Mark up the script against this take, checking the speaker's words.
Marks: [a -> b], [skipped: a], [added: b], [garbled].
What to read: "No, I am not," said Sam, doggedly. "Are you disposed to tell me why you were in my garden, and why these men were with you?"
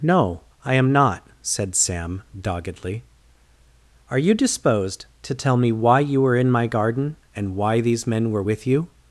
"No, I am not," said Sam, doggedly. "Are you disposed to tell me why you were in my garden, and why these men were with you?"